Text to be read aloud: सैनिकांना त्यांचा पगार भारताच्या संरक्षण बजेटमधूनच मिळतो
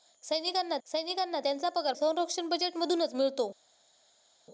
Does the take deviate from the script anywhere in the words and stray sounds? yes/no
yes